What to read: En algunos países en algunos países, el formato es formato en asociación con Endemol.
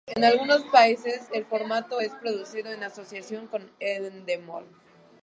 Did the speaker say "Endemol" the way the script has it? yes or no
yes